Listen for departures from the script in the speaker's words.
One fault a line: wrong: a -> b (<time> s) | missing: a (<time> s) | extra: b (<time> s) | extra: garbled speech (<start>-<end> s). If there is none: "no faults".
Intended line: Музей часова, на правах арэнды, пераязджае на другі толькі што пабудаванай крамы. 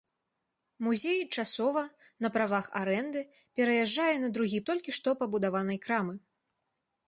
no faults